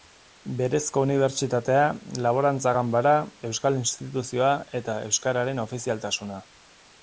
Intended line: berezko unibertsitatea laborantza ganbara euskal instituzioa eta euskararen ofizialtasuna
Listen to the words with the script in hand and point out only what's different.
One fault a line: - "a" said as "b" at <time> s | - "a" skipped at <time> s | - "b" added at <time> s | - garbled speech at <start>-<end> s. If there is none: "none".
none